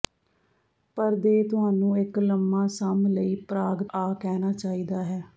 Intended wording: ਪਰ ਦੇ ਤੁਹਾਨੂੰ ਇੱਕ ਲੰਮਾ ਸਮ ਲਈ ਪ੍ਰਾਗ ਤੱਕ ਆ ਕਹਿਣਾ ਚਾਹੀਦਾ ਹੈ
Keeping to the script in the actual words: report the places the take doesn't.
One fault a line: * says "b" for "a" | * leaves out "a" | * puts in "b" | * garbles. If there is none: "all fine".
* leaves out "ਤੱਕ"